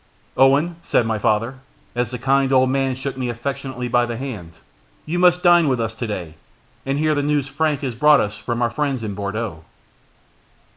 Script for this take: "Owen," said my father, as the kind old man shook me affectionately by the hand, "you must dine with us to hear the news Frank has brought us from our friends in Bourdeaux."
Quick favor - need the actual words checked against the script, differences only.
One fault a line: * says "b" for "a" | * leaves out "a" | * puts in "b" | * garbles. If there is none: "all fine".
* puts in "day and"